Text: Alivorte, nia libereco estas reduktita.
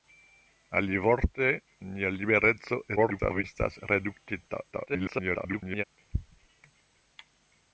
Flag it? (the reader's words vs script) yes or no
yes